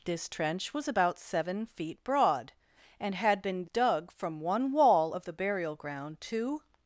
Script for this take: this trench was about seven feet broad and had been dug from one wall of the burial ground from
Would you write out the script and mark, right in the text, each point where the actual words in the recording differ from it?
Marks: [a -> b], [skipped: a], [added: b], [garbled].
this trench was about seven feet broad and had been dug from one wall of the burial ground [from -> to]